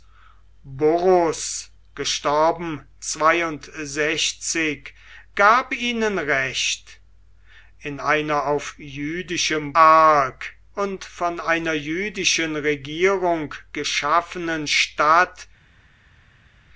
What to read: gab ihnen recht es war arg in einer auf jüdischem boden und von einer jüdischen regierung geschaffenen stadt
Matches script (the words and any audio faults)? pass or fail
fail